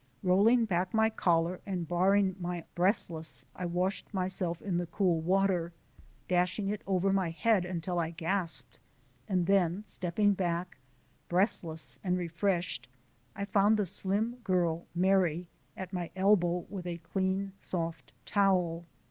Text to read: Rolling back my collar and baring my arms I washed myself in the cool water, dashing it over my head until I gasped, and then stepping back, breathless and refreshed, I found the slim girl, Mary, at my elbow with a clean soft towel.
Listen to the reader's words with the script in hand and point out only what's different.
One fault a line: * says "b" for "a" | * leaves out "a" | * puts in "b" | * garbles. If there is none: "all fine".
* says "breathless" for "arms"